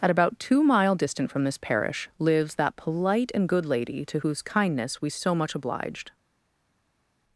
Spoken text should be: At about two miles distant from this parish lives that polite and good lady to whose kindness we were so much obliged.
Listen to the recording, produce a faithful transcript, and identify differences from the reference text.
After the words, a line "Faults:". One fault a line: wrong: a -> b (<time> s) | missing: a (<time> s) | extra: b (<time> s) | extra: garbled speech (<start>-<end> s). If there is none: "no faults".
At about two mile distant from this parish lives that polite and good lady to whose kindness we so much obliged.
Faults:
wrong: miles -> mile (0.6 s)
missing: were (5.1 s)